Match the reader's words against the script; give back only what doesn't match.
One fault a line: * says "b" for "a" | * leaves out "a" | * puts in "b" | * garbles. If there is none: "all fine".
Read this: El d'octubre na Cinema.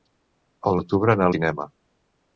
all fine